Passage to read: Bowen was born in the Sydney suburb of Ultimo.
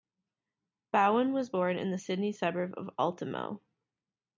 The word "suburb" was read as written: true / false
true